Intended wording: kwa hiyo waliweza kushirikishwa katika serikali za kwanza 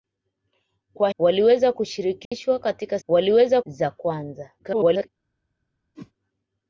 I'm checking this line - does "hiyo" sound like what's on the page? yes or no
no